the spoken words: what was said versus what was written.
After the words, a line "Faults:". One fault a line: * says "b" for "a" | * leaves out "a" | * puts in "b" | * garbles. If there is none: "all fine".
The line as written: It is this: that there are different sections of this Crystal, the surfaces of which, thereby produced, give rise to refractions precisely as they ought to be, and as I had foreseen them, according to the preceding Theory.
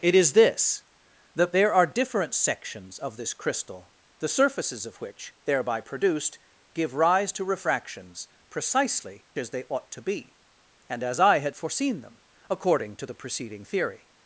It is this: that there are different sections of this Crystal, the surfaces of which, thereby produced, give rise to refractions precisely as they ought to be, and as I had foreseen them, according to the preceding Theory.
Faults:
all fine